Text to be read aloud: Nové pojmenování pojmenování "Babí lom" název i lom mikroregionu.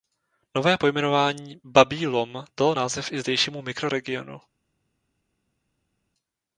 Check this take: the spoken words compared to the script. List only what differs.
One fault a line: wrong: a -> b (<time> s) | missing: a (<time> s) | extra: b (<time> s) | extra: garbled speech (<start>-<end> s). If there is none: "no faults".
missing: pojmenování (1.6 s)
extra: dalo (2.6 s)
wrong: lom -> zdejšímu (3.2 s)